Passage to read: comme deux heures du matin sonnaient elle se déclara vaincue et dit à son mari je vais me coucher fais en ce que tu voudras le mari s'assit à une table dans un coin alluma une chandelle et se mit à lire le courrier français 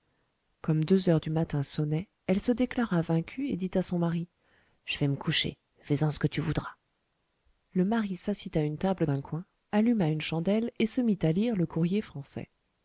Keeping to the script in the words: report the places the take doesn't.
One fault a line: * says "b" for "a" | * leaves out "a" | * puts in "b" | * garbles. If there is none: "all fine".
* leaves out "dans"